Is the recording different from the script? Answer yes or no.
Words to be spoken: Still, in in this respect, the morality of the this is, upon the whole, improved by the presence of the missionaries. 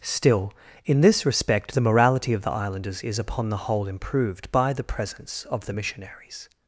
yes